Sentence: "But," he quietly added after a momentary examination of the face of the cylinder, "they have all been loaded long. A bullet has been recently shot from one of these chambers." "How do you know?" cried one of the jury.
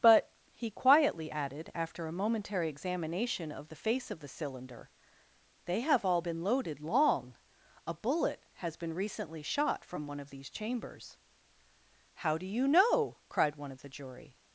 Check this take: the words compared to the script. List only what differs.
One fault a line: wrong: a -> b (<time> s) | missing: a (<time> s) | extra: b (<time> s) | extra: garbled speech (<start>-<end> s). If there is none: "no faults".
no faults